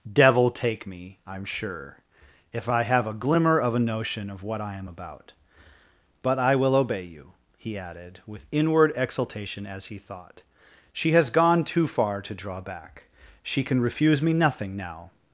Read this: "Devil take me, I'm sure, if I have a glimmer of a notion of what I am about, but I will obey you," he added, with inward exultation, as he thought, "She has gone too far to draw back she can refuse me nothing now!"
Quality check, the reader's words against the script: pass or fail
pass